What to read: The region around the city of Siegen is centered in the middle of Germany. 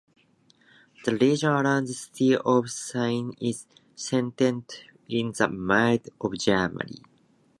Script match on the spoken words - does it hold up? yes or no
yes